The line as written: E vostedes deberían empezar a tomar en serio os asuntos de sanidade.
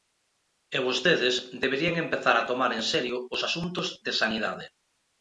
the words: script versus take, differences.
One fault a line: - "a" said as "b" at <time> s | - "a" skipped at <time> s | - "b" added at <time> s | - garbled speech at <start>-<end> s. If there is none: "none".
none